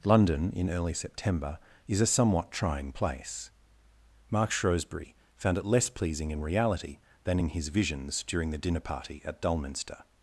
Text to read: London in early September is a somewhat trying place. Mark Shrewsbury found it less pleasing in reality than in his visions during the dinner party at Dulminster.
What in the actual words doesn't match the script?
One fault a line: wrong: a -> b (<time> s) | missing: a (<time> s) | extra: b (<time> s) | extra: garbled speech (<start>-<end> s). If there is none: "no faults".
no faults